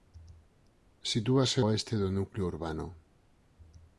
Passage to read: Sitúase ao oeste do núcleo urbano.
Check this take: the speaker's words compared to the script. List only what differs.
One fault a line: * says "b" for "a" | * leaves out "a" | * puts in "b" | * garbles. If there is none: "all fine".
* leaves out "ao"